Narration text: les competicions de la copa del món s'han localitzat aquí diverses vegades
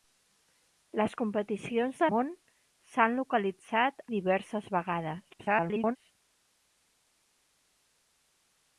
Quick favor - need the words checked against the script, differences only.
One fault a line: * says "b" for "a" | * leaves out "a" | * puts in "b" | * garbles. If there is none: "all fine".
* leaves out "la copa del"
* leaves out "aquí"
* garbles